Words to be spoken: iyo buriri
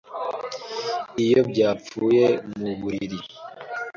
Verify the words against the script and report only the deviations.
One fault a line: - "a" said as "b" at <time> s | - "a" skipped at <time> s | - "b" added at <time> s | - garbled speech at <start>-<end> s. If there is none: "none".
- "byapfuye mu" added at 1.5 s